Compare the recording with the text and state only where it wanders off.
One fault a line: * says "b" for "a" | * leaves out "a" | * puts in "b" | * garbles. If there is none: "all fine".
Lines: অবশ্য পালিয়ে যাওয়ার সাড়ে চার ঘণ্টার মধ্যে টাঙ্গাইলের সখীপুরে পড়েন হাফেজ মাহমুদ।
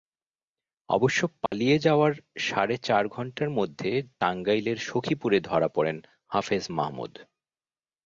* puts in "ধরা"